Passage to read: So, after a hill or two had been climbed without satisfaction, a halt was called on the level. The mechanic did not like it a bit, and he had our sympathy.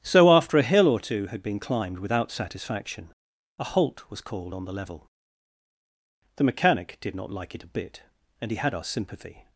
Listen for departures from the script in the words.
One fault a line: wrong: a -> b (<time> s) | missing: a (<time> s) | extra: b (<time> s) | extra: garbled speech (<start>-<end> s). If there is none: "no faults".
no faults